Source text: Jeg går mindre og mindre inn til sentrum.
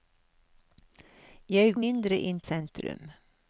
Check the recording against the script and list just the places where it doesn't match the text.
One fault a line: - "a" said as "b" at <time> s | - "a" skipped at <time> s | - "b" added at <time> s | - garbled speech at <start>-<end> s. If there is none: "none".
- "går mindre" skipped at 1.8 s
- "til" skipped at 2.4 s